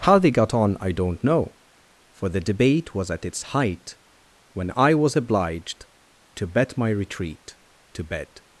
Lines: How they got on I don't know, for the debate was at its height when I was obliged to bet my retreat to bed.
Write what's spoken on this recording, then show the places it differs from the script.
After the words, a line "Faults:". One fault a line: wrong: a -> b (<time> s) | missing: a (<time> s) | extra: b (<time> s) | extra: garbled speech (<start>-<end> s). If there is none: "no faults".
How they got on I don't know, for the debate was at its height when I was obliged to bet my retreat to bed.
Faults:
no faults